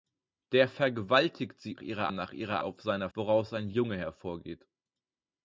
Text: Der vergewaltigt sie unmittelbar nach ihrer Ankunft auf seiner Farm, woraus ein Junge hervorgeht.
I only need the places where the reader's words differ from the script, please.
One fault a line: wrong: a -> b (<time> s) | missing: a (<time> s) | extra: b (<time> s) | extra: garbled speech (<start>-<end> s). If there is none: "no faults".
wrong: unmittelbar -> ihrer (1.8 s)
missing: Ankunft (2.6 s)
missing: Farm (3.1 s)